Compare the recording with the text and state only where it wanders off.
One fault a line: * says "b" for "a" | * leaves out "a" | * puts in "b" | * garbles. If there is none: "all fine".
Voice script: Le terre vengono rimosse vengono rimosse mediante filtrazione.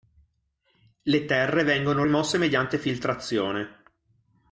* leaves out "vengono rimosse"